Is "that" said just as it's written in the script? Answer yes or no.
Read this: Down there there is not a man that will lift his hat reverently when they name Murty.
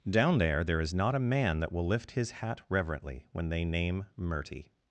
yes